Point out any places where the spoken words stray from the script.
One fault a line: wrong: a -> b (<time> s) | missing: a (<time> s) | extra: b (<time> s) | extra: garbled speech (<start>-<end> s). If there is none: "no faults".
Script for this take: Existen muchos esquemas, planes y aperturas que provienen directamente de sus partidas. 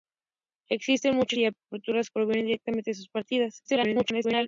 missing: esquemas planes (1.4 s)
missing: que (2.1 s)
extra: garbled speech (3.6-4.5 s)